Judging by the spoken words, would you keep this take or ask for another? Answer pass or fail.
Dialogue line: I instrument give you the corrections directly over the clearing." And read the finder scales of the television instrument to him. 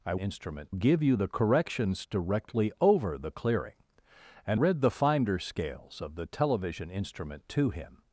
pass